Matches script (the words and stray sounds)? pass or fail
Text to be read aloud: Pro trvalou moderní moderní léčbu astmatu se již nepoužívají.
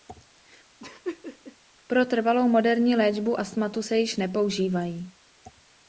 fail